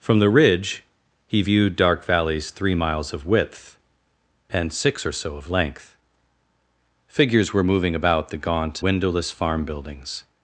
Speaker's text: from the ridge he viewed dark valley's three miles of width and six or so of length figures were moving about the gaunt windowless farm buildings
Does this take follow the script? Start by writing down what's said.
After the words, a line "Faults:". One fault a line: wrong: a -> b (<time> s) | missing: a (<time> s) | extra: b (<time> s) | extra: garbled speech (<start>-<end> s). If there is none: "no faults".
from the ridge he viewed dark valley's three miles of width and six or so of length figures were moving about the gaunt windowless farm buildings
Faults:
no faults